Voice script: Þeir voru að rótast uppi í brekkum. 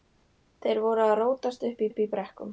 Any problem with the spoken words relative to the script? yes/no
yes